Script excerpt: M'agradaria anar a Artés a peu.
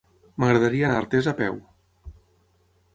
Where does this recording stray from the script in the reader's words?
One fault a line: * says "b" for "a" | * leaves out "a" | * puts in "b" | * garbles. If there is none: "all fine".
all fine